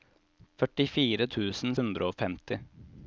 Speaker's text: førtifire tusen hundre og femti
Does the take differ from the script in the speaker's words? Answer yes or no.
no